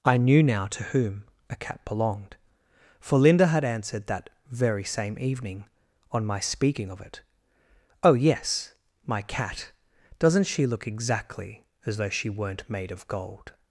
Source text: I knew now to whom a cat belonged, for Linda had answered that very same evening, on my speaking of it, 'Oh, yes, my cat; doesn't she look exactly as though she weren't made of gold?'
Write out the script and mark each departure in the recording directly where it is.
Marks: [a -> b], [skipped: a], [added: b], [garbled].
I knew now to whom a cat belonged, for Linda had answered that very same evening, on my speaking of it, 'Oh, yes, my cat; doesn't she look exactly as though she weren't made of gold?'